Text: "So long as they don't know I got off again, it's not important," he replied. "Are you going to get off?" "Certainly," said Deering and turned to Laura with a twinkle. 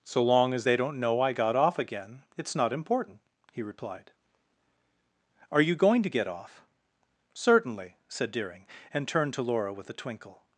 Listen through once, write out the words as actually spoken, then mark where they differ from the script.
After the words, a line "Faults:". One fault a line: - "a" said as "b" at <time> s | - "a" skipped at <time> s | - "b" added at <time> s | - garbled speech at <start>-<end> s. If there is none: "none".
"So long as they don't know I got off again, it's not important," he replied. "Are you going to get off?" "Certainly," said Deering and turned to Laura with a twinkle.
Faults:
none